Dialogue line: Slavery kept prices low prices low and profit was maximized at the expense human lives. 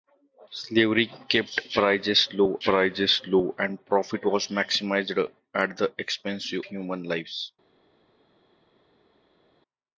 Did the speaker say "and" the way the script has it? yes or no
yes